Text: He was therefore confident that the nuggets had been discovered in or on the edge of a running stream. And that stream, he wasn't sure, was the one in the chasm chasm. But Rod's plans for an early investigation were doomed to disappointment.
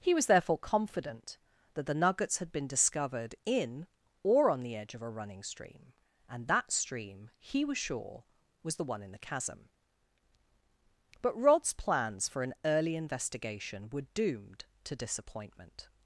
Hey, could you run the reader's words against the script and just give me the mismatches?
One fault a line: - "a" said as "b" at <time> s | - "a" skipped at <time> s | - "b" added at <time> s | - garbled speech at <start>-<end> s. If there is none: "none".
- "wasn't" said as "was" at 7.6 s
- "chasm" skipped at 9.7 s